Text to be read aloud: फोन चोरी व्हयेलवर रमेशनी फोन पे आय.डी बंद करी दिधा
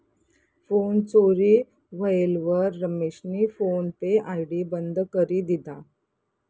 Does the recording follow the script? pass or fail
pass